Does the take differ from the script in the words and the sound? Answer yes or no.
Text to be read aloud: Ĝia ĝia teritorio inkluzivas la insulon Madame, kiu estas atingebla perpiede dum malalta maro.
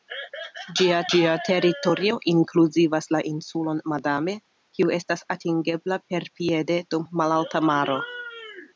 no